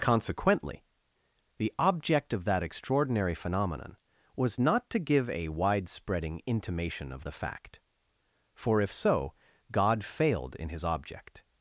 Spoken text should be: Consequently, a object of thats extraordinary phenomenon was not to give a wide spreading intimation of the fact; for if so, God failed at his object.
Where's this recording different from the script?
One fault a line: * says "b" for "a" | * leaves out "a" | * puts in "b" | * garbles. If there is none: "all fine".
* says "the" for "a"
* says "that" for "thats"
* says "in" for "at"